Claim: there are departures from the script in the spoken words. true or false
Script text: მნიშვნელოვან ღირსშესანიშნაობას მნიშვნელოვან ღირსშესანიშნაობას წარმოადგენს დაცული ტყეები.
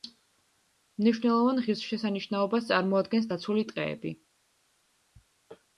true